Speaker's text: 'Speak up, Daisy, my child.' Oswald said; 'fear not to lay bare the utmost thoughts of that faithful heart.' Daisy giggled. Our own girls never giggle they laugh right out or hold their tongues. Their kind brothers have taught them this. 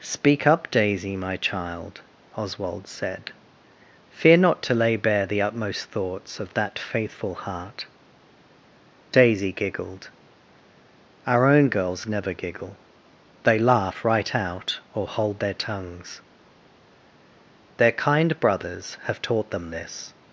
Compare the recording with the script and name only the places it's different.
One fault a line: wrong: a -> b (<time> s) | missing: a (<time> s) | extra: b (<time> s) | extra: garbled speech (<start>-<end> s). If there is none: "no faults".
no faults